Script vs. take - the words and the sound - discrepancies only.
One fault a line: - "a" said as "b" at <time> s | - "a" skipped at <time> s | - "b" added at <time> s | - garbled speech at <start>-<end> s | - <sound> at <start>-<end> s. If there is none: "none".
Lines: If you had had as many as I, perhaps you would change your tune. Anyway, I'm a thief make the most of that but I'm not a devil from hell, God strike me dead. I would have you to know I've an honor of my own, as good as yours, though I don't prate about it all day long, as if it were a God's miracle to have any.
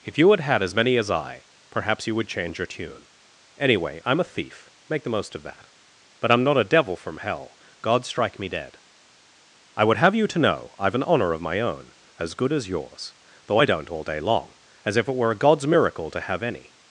- "prate about it" skipped at 13.9 s